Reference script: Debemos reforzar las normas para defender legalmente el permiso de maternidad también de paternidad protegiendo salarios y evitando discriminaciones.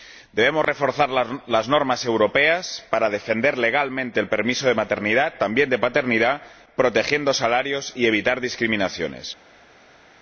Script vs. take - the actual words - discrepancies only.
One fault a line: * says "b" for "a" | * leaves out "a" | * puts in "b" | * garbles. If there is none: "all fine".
* puts in "europeas"